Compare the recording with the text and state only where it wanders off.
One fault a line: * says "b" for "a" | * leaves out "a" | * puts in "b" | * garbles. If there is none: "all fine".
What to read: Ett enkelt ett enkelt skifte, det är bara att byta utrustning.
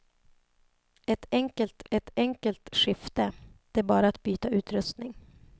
all fine